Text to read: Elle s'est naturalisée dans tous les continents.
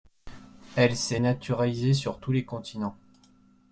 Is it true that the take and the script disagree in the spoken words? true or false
true